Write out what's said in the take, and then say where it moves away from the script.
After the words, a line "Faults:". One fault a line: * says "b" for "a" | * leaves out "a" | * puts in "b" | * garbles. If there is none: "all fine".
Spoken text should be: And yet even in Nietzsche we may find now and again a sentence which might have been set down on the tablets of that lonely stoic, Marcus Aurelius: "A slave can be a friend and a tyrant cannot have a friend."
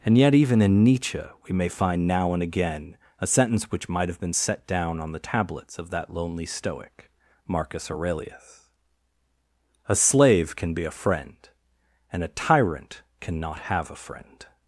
And yet even in Nietzsche we may find now and again a sentence which might have been set down on the tablets of that lonely stoic, Marcus Aurelius: "A slave can be a friend and a tyrant cannot have a friend."
Faults:
all fine